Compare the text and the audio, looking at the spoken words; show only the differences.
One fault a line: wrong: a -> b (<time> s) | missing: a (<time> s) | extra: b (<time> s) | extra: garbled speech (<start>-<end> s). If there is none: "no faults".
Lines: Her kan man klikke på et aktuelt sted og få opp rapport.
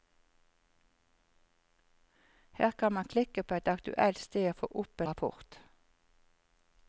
no faults